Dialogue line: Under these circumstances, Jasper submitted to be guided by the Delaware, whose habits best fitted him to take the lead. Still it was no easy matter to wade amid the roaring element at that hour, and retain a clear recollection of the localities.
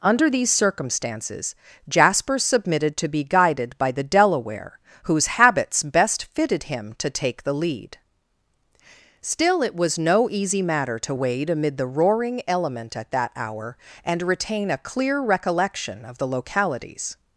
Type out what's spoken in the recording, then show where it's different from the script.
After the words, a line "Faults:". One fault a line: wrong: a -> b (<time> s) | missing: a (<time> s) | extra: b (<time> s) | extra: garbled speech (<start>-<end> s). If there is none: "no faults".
Under these circumstances, Jasper submitted to be guided by the Delaware, whose habits best fitted him to take the lead. Still it was no easy matter to wade amid the roaring element at that hour, and retain a clear recollection of the localities.
Faults:
no faults